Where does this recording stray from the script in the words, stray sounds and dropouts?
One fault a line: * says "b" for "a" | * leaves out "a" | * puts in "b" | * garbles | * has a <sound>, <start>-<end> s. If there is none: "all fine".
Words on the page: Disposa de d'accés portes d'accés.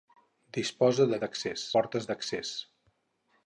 all fine